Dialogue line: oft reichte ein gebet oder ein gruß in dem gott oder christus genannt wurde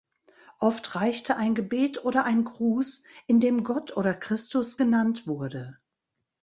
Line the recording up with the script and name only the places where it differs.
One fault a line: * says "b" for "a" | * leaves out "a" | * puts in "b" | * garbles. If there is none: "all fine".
all fine